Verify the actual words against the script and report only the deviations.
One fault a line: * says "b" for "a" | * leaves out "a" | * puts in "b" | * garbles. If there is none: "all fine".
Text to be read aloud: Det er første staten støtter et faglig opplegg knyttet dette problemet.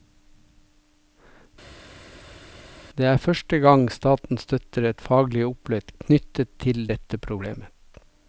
* puts in "gang"
* puts in "til"